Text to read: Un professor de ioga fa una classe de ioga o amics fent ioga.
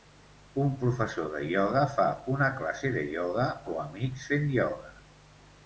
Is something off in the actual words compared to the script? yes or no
no